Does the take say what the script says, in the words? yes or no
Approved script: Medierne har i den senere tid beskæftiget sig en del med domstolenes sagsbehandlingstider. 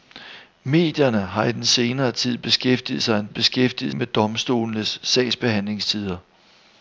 no